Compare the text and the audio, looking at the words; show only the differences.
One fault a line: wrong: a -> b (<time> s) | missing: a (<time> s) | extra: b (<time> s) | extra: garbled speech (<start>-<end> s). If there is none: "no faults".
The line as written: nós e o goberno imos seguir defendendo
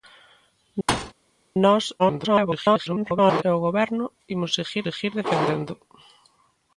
extra: garbled speech (2.0-3.4 s)
extra: seguir (4.8 s)